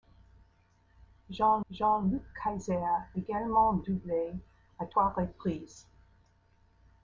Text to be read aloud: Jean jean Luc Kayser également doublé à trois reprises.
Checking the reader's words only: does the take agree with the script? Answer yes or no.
yes